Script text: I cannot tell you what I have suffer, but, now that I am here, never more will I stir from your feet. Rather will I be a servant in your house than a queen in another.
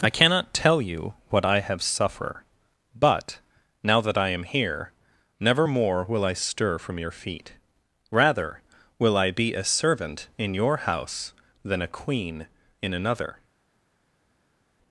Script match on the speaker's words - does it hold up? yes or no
yes